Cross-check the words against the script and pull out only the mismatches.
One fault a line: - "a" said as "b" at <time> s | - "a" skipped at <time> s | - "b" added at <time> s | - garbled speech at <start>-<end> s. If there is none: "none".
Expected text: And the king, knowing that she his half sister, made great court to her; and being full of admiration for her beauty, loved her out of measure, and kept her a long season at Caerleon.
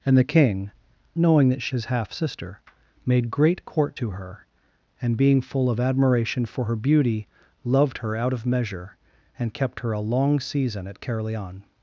none